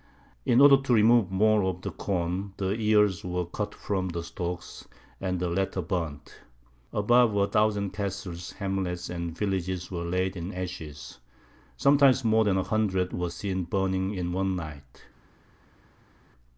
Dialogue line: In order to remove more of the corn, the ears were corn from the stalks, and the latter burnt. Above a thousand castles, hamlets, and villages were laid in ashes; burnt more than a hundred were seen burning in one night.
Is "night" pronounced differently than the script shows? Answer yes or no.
no